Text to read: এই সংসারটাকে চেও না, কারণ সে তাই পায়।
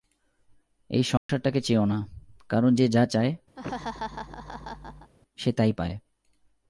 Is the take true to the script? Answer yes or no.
no